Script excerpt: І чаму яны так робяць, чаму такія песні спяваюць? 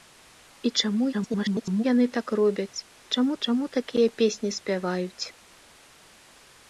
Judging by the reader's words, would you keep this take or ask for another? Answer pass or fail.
fail